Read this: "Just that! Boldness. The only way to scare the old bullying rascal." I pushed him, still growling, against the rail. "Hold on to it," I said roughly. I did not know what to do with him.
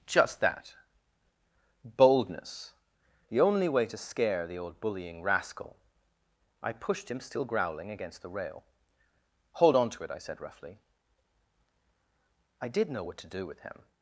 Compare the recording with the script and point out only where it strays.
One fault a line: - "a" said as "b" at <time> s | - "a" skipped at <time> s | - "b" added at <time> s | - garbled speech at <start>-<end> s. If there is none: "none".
- "not" skipped at 12.9 s